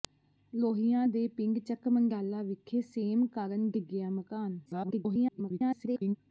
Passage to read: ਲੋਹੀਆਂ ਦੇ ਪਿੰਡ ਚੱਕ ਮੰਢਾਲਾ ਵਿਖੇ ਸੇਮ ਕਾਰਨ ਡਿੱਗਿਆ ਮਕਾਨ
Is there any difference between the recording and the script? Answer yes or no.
yes